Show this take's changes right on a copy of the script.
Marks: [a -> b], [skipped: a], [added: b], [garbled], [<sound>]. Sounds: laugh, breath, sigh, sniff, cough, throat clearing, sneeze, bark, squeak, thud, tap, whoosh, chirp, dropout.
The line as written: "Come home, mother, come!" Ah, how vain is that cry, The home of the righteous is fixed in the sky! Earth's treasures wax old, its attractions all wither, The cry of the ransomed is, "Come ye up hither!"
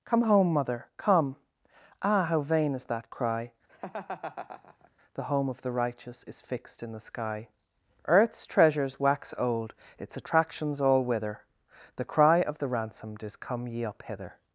"Come home, mother, come!" Ah, how vain is that cry, [laugh] The home of the righteous is fixed in the sky! Earth's treasures wax old, its attractions all wither, The cry of the ransomed is, "Come ye up hither!"